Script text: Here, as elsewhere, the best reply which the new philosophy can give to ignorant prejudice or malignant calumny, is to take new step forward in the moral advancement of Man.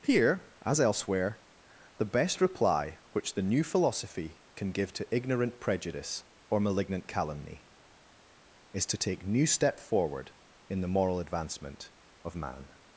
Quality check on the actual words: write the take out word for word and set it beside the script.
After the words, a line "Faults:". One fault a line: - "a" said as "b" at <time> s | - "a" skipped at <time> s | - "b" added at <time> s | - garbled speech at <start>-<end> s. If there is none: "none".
Here, as elsewhere, the best reply which the new philosophy can give to ignorant prejudice or malignant calumny, is to take new step forward in the moral advancement of Man.
Faults:
none